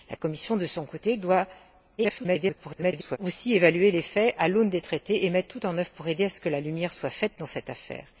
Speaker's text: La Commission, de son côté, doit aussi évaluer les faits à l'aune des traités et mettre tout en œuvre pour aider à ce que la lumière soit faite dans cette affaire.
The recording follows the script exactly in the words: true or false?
false